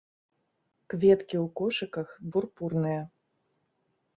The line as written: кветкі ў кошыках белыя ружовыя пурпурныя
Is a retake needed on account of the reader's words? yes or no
yes